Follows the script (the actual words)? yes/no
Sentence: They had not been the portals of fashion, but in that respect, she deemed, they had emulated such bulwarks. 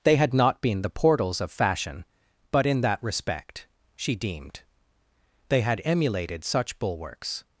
yes